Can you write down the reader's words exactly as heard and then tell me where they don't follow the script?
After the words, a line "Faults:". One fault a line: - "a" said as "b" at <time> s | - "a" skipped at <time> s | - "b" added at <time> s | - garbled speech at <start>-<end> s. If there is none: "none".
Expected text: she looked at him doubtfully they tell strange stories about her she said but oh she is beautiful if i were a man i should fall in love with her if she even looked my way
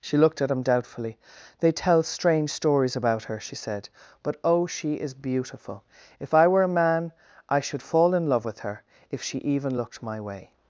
she looked at him doubtfully they tell strange stories about her she said but oh she is beautiful if i were a man i should fall in love with her if she even looked my way
Faults:
none